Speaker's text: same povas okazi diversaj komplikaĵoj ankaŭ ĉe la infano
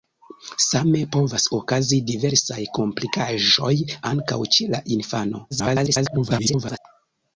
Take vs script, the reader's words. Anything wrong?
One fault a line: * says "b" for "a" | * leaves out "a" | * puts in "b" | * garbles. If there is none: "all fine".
* garbles